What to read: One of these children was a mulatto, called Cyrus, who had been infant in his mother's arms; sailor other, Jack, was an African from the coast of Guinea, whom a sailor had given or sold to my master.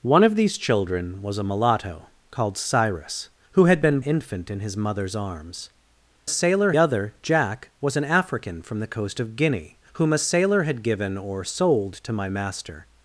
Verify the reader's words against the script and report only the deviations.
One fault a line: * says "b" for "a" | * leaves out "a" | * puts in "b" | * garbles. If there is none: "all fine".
all fine